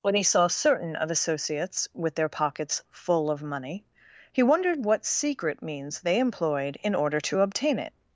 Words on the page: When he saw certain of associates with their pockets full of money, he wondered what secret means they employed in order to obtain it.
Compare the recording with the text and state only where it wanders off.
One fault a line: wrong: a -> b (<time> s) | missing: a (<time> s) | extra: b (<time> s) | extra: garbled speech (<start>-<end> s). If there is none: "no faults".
no faults